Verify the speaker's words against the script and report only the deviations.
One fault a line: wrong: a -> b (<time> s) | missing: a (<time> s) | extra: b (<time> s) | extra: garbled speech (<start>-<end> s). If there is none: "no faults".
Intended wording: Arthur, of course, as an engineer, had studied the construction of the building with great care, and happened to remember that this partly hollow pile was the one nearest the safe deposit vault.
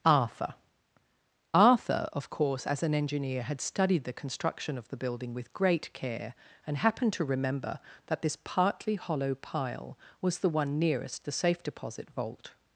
extra: arthur (1.5 s)